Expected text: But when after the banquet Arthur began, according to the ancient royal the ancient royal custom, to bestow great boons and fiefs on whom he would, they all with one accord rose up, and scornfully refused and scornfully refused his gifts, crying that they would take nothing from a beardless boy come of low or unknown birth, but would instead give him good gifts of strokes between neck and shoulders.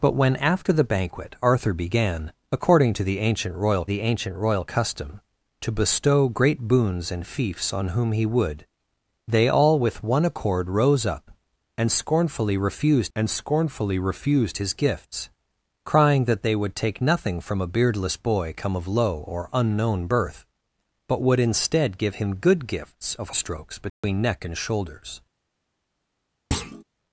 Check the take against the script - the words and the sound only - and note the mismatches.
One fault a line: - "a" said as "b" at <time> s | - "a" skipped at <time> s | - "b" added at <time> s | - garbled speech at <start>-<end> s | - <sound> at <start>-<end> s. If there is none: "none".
- dropout at 23.9-24.0 s
- thud at 26.5-26.8 s